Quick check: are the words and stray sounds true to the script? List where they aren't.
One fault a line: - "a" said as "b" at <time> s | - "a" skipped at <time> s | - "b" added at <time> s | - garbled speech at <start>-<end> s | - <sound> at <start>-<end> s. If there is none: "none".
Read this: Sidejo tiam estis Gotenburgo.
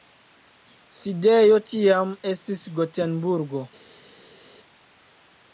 none